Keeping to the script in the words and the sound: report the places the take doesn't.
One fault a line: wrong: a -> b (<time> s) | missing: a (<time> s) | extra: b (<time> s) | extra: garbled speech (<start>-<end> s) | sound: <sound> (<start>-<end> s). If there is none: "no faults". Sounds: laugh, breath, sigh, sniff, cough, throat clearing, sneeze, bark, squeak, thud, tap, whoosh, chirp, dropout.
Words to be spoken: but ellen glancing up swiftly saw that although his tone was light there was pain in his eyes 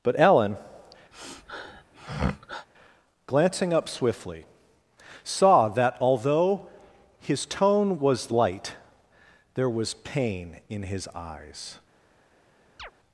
sound: sniff (1.1-2.7 s)
sound: chirp (12.8-12.9 s)